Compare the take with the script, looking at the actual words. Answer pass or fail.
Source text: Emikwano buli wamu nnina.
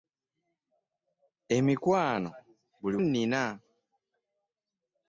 fail